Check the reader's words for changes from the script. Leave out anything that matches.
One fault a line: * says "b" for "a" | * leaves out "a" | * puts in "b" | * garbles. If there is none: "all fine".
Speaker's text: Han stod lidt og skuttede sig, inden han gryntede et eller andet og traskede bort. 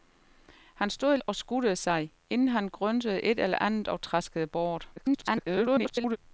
* leaves out "lidt"
* garbles